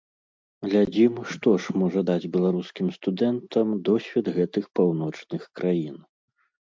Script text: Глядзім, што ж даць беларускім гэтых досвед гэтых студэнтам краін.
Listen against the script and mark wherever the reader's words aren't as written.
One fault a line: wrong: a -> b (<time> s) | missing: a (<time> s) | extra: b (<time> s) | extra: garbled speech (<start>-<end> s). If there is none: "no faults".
extra: можа (1.8 s)
wrong: гэтых -> студэнтам (3.0 s)
wrong: студэнтам -> паўночных (4.8 s)